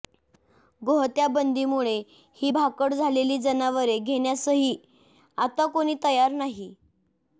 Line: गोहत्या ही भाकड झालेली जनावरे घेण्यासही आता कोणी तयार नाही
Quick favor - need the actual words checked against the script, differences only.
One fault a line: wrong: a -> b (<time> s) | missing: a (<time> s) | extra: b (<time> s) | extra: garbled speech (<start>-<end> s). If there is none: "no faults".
extra: बंदीमुळे (1.3 s)